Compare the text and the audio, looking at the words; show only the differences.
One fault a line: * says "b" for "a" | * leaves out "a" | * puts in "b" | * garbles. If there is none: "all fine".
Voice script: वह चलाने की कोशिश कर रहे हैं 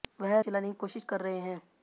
all fine